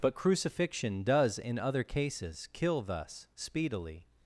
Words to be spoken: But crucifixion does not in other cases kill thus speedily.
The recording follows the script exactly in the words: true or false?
false